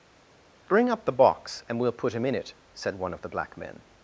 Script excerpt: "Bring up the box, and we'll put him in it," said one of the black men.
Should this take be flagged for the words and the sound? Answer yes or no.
no